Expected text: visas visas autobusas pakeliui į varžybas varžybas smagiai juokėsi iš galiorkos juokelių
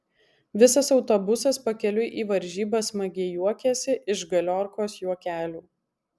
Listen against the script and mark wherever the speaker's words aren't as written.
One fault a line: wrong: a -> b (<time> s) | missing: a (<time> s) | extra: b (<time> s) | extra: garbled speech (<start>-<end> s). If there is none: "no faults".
missing: visas (0.9 s)
missing: varžybas (2.9 s)